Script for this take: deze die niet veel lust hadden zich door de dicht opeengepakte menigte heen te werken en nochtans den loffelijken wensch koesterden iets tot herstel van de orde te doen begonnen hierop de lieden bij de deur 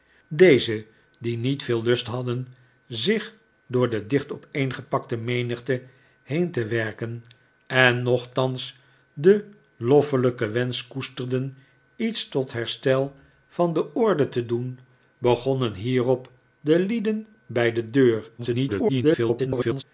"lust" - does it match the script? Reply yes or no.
yes